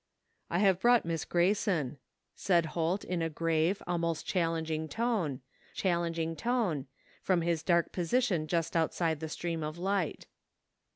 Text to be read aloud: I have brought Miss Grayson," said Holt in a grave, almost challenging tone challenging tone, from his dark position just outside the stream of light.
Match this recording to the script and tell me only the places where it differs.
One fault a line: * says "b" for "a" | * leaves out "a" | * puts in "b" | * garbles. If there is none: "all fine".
all fine